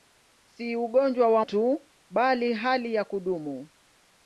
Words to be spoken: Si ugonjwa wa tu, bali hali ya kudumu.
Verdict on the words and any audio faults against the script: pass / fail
pass